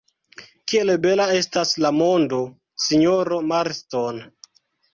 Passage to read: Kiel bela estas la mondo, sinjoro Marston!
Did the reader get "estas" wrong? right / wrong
right